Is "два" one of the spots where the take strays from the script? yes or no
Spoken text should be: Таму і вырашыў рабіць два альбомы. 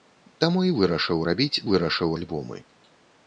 yes